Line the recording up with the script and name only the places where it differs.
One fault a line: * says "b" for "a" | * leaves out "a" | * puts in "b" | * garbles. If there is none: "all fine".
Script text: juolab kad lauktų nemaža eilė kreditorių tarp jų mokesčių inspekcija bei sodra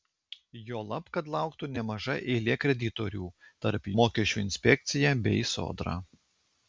* leaves out "jų"